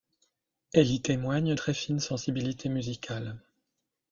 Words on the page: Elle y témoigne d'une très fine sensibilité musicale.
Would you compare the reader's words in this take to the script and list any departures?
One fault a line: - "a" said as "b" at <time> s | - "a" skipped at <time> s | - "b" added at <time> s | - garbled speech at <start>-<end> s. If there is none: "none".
- "d'une" skipped at 1.6 s